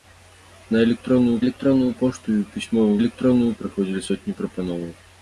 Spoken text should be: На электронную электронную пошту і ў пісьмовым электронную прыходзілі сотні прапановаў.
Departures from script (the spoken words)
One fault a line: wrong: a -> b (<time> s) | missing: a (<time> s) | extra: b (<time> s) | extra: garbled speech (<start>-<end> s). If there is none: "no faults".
no faults